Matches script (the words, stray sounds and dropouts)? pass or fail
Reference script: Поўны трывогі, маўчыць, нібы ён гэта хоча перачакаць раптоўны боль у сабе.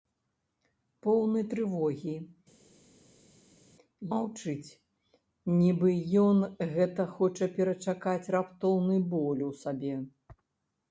pass